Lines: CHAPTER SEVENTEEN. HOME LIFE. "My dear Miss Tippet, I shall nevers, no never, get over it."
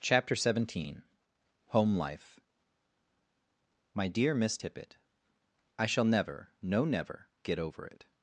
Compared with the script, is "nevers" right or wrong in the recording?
wrong